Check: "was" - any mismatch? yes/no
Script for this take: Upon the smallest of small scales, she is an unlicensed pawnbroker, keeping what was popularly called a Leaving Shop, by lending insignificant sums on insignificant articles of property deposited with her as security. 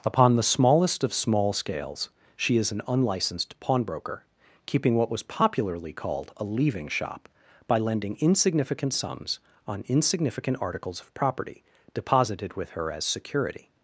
no